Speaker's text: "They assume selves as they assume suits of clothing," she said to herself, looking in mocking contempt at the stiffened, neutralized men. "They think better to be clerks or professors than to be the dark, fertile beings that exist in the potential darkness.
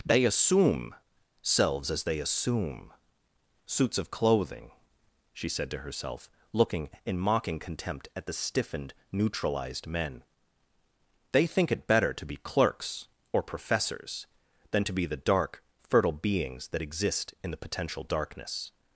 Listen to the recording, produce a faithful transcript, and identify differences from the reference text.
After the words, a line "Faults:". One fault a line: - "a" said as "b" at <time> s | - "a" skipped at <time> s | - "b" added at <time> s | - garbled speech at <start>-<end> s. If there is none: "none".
"They assume selves as they assume suits of clothing," she said to herself, looking in mocking contempt at the stiffened, neutralized men. "They think it better to be clerks or professors than to be the dark, fertile beings that exist in the potential darkness.
Faults:
- "it" added at 11.7 s